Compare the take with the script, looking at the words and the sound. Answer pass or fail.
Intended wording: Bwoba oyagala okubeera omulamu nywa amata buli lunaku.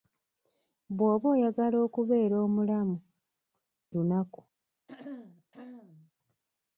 fail